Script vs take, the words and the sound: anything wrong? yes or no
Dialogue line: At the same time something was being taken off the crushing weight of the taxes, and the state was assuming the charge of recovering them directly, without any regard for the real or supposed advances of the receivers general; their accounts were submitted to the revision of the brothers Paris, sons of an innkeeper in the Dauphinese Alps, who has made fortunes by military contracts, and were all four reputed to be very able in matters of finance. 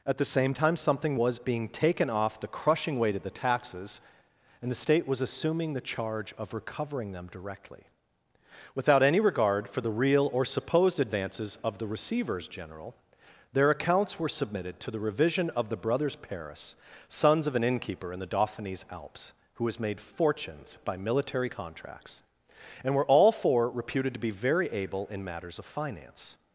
no